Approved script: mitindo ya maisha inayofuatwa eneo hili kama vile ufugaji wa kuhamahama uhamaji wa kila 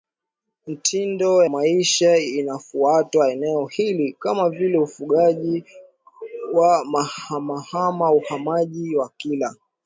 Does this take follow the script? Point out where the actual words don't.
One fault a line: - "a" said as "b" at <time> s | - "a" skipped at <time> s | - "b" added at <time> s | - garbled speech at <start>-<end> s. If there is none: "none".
- "ya" skipped at 1.4 s